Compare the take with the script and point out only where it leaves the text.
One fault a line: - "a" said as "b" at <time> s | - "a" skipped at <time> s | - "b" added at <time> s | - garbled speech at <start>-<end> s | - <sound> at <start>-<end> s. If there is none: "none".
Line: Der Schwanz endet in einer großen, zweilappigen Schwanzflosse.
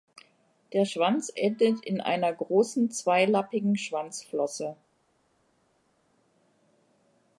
none